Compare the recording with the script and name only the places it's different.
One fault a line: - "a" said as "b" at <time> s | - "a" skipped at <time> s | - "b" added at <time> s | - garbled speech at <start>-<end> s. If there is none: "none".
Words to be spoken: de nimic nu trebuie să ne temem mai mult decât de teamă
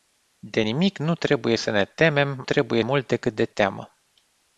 - "mai" said as "trebuie" at 2.4 s